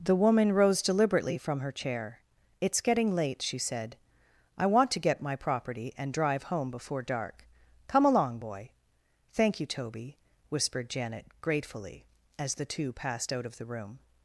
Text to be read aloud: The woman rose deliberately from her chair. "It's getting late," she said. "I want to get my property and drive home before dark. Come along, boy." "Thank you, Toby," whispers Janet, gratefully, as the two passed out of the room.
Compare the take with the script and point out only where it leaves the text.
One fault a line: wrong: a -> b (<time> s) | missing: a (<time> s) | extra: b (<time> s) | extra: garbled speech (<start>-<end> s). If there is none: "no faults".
wrong: whispers -> whispered (10.5 s)